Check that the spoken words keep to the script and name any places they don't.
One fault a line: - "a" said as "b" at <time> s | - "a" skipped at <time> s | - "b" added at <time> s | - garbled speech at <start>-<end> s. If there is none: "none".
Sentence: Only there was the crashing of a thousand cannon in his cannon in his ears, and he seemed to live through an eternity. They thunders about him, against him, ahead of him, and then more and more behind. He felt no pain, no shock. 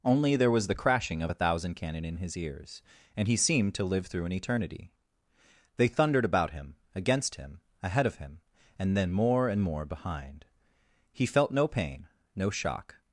- "cannon in his" skipped at 2.4 s
- "thunders" said as "thundered" at 5.9 s